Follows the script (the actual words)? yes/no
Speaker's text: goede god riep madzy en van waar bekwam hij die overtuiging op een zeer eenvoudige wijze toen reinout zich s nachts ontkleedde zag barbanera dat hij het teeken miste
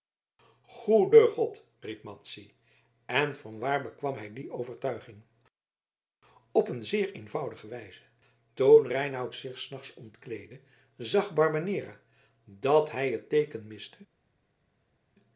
yes